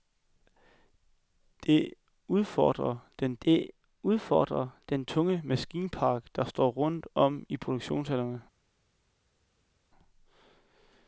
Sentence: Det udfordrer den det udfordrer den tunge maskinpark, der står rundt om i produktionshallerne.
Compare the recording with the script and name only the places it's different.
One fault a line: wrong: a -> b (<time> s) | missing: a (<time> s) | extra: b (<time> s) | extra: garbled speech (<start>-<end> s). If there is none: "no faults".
no faults